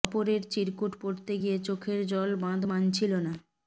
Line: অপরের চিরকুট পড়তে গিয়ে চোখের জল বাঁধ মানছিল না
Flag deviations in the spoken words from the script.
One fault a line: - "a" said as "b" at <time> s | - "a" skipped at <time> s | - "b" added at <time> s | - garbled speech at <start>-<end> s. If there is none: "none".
none